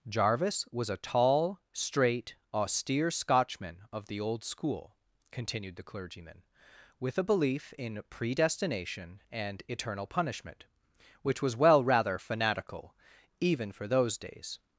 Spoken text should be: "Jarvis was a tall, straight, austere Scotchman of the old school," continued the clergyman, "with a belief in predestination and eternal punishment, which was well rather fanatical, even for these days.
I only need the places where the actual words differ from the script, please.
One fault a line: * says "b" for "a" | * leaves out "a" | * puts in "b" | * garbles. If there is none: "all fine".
* says "those" for "these"